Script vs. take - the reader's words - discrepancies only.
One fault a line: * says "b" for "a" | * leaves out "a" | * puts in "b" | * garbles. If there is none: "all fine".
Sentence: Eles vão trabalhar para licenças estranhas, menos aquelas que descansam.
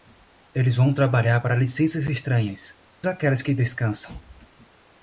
* leaves out "menos"